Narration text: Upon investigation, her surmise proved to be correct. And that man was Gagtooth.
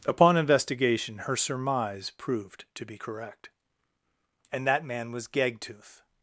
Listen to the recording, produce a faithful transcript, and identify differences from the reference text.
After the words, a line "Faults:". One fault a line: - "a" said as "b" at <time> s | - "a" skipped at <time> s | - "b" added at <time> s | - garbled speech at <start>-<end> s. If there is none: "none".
Upon investigation, her surmise proved to be correct. And that man was Gagtooth.
Faults:
none